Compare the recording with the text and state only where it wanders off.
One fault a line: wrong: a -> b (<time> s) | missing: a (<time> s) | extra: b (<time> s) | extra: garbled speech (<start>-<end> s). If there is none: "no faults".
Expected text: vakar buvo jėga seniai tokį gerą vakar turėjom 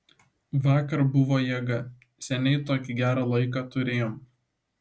wrong: vakar -> laiką (3.3 s)